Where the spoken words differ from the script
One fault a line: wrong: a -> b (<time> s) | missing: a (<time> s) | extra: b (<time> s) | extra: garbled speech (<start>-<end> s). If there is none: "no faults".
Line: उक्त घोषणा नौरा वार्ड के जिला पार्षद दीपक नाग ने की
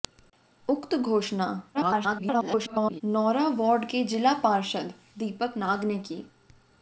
extra: garbled speech (1.7-3.0 s)